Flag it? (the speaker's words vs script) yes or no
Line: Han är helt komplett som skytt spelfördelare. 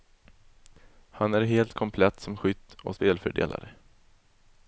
yes